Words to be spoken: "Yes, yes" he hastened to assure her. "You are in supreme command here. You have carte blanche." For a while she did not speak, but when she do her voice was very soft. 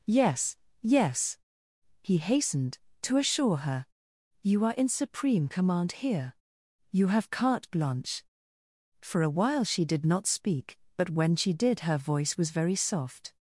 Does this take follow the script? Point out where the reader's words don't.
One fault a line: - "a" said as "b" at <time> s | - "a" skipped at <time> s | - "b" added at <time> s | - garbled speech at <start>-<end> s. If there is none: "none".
- "do" said as "did" at 11.5 s